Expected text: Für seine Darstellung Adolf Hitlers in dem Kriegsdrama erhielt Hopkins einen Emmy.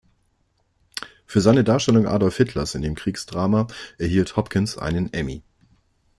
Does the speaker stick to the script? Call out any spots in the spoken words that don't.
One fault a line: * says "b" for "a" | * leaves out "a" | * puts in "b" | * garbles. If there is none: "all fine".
all fine